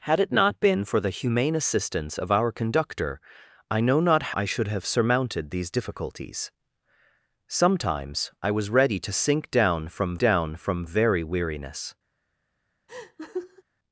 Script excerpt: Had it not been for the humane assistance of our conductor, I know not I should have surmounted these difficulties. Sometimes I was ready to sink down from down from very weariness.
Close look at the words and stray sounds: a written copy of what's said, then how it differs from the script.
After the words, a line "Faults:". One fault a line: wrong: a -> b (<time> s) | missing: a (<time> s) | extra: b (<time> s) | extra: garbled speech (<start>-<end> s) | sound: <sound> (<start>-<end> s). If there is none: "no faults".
Had it not been for the humane assistance of our conductor, I know not I should have surmounted these difficulties. Sometimes I was ready to sink down from down from very weariness.
Faults:
sound: laugh (12.9-13.6 s)